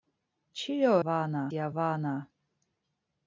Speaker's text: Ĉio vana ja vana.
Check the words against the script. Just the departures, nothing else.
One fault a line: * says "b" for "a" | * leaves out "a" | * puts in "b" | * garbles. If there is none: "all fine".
all fine